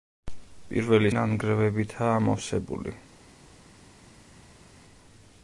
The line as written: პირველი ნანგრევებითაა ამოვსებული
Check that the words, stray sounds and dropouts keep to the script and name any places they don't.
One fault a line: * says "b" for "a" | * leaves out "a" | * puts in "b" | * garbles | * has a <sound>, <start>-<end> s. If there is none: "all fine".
all fine